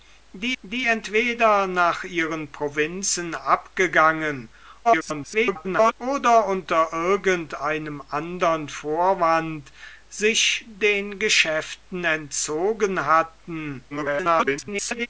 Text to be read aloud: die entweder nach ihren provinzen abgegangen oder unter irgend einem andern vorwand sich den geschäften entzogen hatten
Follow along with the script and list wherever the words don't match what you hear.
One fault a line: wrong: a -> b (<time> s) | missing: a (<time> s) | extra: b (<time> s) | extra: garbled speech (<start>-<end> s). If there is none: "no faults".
extra: die (0.6 s)
extra: garbled speech (4.8-5.9 s)
extra: garbled speech (13.9-15.1 s)